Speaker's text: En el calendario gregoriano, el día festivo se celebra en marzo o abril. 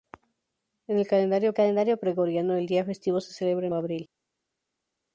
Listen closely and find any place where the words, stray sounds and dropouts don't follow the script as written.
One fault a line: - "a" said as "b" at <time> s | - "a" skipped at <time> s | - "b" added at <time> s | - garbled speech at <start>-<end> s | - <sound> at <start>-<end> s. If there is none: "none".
- "calendario" added at 1.5 s
- "marzo" skipped at 3.7 s